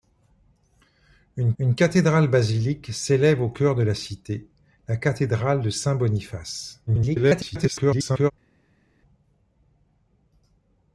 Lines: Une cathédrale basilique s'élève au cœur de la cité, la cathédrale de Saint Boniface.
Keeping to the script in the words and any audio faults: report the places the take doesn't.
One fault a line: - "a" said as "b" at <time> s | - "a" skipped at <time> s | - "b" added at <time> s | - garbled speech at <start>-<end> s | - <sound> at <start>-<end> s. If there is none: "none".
- "une" added at 1.6 s
- garbled speech at 6.9-8.3 s